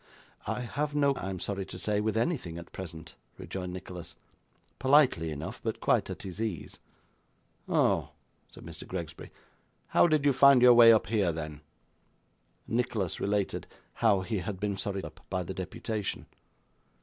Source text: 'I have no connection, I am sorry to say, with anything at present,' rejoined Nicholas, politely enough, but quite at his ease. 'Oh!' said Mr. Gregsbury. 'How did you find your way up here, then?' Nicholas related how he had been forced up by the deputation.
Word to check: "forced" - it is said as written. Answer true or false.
false